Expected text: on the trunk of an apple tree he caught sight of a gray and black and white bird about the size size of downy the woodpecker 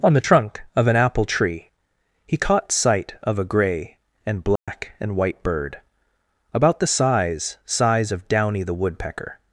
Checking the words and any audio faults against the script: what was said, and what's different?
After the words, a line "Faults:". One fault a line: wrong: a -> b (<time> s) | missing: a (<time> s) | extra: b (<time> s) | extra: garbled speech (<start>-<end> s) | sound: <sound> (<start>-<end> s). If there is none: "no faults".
on the trunk of an apple tree he caught sight of a gray and black and white bird about the size size of downy the woodpecker
Faults:
sound: dropout (4.6-4.7 s)